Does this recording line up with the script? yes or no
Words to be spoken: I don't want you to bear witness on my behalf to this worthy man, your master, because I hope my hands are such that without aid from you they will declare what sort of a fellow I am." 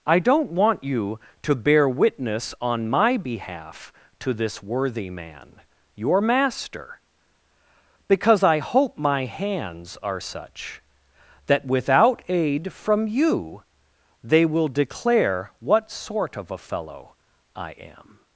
yes